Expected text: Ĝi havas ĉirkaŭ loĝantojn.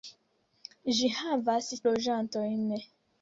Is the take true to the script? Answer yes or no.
no